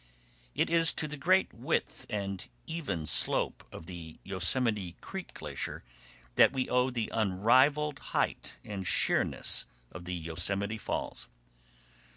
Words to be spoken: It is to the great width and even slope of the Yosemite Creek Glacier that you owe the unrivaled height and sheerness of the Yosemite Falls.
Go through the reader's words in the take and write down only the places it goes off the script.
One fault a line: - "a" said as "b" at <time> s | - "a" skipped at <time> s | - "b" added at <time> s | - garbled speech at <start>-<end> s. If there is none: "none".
- "you" said as "we" at 6.5 s